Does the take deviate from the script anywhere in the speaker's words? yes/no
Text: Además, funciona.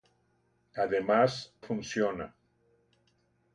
no